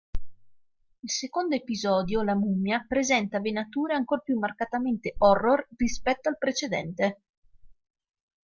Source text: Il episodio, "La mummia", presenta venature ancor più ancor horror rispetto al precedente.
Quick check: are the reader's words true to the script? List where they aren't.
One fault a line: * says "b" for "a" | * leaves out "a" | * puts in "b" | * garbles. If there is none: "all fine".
* puts in "secondo"
* says "marcatamente" for "ancor"